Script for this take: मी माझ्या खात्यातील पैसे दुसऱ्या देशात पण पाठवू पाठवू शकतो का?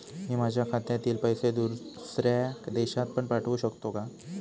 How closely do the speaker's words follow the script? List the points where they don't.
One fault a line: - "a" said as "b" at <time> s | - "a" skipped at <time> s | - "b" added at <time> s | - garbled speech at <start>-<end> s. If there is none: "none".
- "पाठवू" skipped at 3.6 s